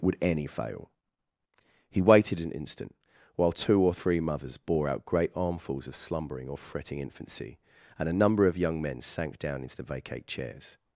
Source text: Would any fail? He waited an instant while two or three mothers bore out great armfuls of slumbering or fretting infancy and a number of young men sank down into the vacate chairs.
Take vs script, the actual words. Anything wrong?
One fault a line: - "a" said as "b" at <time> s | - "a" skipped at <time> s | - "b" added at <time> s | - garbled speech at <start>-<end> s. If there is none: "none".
none